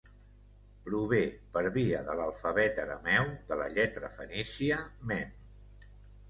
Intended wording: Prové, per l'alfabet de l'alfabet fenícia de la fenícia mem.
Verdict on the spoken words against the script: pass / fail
fail